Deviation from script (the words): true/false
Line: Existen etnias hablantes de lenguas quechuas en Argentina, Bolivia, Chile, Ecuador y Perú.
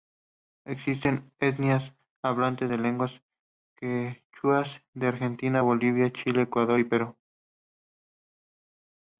false